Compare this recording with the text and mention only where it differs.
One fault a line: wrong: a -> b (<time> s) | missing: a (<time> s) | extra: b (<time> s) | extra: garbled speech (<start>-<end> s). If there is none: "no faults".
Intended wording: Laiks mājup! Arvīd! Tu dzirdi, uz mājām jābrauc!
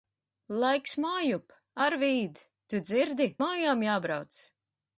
missing: uz (3.3 s)